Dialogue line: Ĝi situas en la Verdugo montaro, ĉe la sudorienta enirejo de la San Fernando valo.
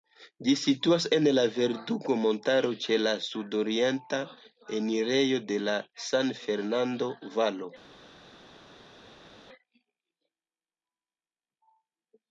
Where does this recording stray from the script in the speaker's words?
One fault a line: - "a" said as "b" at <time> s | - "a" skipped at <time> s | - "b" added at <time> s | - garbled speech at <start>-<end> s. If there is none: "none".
none